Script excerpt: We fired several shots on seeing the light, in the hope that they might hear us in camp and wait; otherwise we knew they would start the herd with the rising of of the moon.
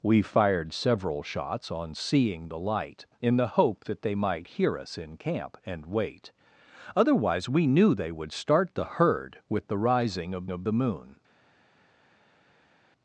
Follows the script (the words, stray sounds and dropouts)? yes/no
yes